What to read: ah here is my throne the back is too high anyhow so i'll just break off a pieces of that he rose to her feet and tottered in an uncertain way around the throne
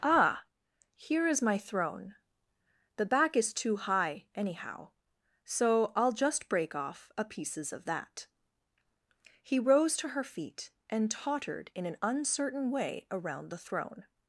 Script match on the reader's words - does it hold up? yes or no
yes